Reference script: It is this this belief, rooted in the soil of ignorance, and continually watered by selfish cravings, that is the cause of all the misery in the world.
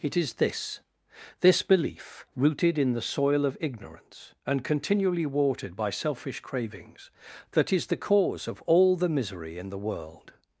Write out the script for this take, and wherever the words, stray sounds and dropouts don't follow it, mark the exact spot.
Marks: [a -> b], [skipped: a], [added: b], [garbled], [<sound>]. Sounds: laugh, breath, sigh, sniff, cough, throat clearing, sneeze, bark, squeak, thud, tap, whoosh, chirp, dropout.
It is this this belief, rooted in the soil of ignorance, and continually watered by selfish cravings, that is the cause of all the misery in the world.